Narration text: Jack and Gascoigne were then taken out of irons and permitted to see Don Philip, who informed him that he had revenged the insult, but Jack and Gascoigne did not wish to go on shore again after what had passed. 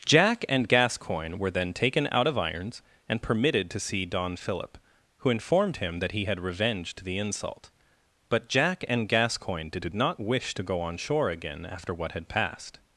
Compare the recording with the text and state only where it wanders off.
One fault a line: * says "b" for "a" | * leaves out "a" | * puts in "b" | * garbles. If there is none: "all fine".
* puts in "did"